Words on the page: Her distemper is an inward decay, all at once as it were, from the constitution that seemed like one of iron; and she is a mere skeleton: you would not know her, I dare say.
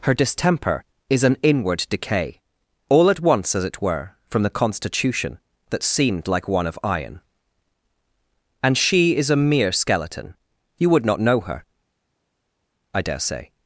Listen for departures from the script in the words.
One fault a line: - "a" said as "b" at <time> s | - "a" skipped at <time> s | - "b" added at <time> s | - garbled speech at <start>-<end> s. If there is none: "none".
none